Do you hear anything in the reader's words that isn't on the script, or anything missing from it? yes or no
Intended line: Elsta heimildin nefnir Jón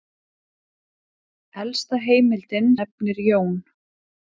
no